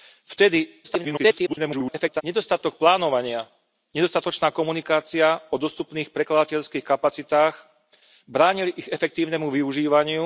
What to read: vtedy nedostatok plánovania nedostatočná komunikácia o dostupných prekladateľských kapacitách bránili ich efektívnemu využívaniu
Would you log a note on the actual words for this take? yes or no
yes